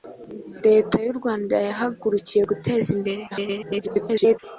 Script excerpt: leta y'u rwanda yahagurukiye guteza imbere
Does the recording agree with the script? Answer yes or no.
no